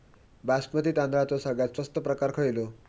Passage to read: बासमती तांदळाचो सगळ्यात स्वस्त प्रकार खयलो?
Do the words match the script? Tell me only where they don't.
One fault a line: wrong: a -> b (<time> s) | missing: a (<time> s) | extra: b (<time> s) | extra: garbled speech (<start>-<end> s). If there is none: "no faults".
no faults